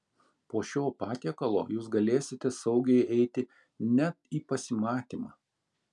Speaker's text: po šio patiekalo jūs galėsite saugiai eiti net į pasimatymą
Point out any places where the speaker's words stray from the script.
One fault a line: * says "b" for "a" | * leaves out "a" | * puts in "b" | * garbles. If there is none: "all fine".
all fine